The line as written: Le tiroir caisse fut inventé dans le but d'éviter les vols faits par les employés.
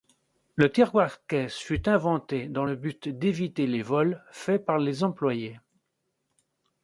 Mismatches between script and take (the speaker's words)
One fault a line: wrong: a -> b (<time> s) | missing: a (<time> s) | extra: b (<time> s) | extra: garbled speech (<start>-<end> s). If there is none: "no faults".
no faults